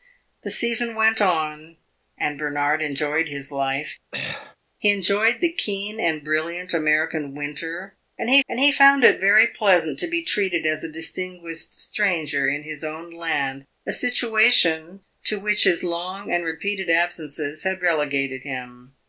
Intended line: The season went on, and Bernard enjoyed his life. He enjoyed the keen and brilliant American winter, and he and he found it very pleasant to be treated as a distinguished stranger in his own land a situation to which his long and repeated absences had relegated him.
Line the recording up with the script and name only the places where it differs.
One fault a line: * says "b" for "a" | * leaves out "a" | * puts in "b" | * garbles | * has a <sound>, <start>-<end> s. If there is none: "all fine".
* has a throat clearing, 4.1-4.6 s